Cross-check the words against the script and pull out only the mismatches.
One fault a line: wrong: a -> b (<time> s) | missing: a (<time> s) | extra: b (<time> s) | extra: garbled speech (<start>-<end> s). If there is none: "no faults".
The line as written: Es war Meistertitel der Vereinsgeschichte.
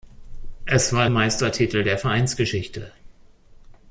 no faults